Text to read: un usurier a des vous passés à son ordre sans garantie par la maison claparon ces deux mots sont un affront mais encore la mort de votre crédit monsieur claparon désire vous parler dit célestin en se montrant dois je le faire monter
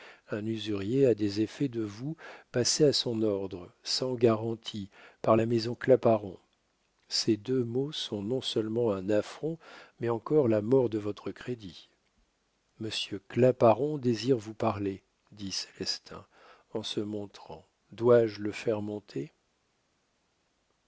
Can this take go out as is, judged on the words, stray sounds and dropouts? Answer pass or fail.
fail